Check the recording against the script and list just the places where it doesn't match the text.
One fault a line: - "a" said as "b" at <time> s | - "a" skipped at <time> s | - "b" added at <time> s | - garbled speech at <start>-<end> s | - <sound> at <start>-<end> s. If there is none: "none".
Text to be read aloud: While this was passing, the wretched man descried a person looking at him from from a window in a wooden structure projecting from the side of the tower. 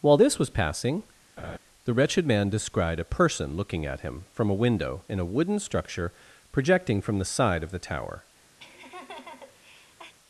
- laugh at 1.4-1.6 s
- "from" skipped at 4.5 s
- laugh at 8.6-10.1 s